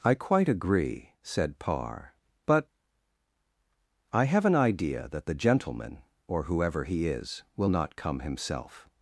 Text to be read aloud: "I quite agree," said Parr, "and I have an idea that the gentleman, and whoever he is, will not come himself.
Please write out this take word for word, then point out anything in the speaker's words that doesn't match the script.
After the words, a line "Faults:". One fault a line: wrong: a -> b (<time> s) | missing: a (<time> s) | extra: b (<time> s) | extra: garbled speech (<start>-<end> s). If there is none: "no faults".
"I quite agree," said Parr, "but I have an idea that the gentleman, or whoever he is, will not come himself.
Faults:
wrong: and -> but (2.5 s)
wrong: and -> or (6.3 s)